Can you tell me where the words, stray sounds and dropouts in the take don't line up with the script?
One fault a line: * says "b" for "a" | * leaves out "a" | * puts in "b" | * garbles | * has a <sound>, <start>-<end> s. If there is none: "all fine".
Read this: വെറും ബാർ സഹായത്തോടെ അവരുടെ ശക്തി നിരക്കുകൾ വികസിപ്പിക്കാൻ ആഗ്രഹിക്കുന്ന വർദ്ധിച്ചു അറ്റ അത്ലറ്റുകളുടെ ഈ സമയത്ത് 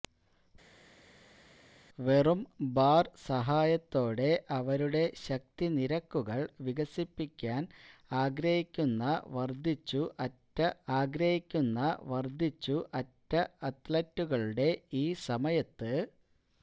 * puts in "ആഗ്രഹിക്കുന്ന വർദ്ധിച്ചു അറ്റ"